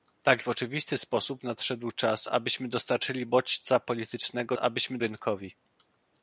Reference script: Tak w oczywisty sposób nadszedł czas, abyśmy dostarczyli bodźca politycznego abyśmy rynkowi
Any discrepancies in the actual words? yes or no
no